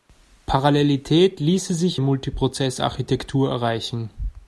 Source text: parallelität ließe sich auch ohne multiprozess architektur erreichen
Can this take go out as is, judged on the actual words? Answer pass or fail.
fail